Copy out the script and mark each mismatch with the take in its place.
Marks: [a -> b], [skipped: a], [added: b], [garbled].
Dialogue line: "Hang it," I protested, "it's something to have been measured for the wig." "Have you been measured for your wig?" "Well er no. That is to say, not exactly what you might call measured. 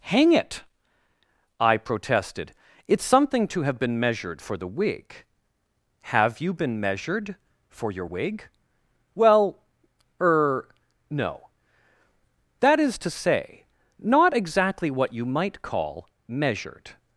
"Hang it," I protested, "it's something to have been measured for the wig." "Have you been measured for your wig?" "Well er no. That is to say, not exactly what you might call measured.